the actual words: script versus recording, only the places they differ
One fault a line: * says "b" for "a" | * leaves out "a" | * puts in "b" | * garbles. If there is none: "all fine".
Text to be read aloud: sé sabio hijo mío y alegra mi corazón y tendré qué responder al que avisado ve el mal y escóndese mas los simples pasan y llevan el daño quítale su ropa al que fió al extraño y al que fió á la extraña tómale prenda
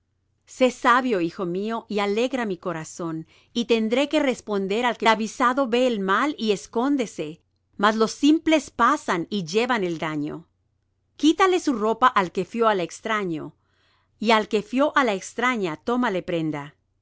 all fine